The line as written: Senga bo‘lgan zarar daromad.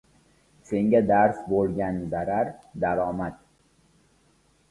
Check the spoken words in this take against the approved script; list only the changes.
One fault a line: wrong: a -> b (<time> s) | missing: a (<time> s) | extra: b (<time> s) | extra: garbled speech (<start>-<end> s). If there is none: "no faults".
extra: dars (1.1 s)